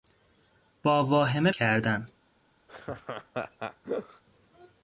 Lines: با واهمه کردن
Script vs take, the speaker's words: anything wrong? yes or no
no